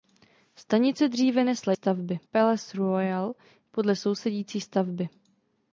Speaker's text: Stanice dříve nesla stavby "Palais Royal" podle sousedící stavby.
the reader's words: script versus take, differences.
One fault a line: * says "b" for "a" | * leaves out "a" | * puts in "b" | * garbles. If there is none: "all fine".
all fine